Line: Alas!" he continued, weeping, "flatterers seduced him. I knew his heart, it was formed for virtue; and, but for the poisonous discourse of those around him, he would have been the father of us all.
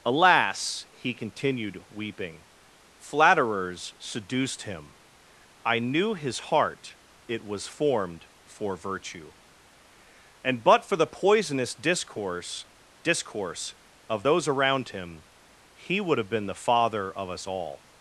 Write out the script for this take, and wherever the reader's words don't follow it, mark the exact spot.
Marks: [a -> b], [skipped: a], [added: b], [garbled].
Alas!" he continued, weeping, "flatterers seduced him. I knew his heart, it was formed for virtue; and, but for the poisonous discourse [added: discourse] of those around him, he would have been the father of us all.